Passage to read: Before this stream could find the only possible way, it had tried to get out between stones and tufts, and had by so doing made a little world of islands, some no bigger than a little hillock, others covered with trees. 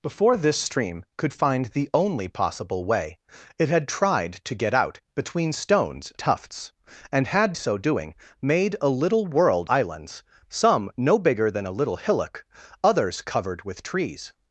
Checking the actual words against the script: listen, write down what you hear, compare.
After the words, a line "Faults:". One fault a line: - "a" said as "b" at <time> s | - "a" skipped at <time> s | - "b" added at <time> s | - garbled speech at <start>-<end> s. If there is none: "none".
Before this stream could find the only possible way, it had tried to get out between stones tufts, and had so doing made a little world islands, some no bigger than a little hillock, others covered with trees.
Faults:
- "and" skipped at 6.1 s
- "by" skipped at 7.6 s
- "of" skipped at 9.7 s